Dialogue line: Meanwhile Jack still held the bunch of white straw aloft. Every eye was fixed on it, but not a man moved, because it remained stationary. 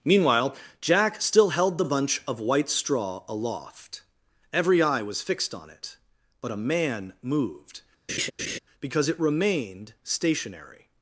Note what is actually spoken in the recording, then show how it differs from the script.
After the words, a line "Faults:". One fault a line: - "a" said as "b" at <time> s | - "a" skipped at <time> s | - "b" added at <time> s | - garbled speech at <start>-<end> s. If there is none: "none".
Meanwhile Jack still held the bunch of white straw aloft. Every eye was fixed on it, but a man moved, because it remained stationary.
Faults:
- "not" skipped at 6.5 s